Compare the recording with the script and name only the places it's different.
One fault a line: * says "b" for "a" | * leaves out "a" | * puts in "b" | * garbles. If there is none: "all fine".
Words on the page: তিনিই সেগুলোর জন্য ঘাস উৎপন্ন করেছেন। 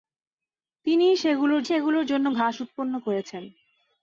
* puts in "সেগুলোর"